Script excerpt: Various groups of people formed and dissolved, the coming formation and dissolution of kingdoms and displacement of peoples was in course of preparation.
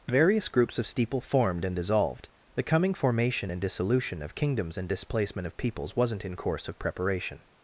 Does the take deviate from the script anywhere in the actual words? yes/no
yes